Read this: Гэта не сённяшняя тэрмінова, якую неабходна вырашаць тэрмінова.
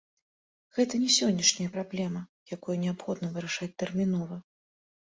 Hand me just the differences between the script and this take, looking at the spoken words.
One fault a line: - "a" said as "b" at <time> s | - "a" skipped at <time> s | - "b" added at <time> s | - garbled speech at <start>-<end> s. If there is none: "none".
- "тэрмінова" said as "праблема" at 1.8 s